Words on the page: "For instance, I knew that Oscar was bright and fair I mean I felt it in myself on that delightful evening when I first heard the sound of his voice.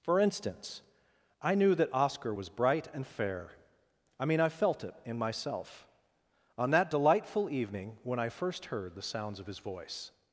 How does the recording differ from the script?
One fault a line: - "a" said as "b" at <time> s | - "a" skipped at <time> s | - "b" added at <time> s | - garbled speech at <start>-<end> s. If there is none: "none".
- "sound" said as "sounds" at 9.0 s